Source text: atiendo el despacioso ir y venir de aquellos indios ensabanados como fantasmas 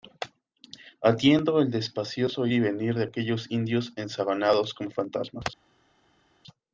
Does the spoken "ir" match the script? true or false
false